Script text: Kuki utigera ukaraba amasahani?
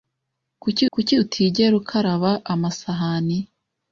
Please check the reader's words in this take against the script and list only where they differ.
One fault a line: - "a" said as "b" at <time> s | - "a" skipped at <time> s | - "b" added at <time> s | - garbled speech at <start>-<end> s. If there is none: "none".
- "kuki" added at 0.9 s